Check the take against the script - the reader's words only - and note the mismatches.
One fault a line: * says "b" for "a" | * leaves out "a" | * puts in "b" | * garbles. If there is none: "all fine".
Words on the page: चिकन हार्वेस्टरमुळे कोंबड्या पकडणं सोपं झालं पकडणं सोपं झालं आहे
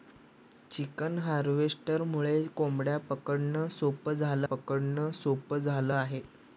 all fine